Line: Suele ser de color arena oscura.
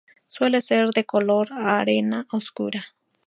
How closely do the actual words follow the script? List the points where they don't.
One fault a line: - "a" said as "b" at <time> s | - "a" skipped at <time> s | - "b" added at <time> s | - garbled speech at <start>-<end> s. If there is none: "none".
none